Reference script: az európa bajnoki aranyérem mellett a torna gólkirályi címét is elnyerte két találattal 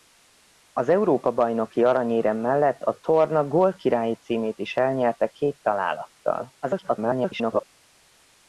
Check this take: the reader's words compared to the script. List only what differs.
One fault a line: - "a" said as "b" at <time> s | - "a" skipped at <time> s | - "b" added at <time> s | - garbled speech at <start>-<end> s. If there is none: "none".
- garbled speech at 6.6-7.6 s